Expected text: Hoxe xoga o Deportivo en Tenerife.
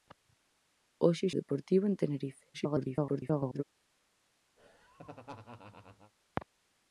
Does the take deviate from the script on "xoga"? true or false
true